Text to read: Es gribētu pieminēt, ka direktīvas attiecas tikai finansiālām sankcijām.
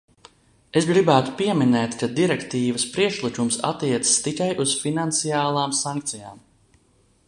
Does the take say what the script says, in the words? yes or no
no